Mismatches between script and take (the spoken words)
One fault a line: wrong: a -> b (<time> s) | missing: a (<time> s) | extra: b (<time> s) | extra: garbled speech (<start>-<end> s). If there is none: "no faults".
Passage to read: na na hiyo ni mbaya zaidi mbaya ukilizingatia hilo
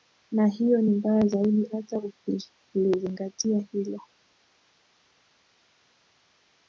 missing: na (0.5 s)
wrong: mbaya -> hata (1.7 s)